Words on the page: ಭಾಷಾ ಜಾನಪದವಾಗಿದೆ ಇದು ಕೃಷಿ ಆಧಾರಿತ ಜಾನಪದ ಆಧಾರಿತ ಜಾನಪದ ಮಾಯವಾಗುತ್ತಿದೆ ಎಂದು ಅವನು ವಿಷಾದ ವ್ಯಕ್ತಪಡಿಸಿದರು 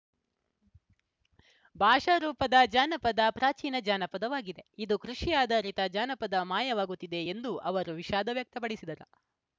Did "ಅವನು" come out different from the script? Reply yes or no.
yes